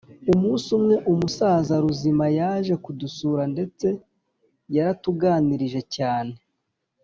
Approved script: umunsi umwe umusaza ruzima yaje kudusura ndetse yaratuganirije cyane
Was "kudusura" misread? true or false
false